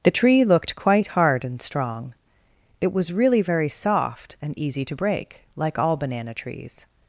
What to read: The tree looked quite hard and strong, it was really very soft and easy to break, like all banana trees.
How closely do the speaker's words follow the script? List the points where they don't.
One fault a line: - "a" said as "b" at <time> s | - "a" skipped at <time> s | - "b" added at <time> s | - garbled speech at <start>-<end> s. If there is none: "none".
none